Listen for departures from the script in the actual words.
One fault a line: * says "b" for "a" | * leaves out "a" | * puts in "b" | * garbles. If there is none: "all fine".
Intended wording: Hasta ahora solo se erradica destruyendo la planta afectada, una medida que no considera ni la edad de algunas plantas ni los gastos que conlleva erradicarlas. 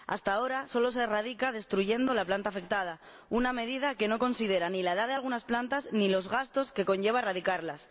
all fine